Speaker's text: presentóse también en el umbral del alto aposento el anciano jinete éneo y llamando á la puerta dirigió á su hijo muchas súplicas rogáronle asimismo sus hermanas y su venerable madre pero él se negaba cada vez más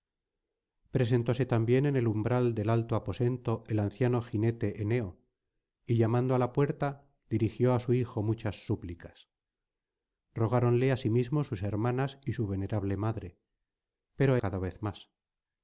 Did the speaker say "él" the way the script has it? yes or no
no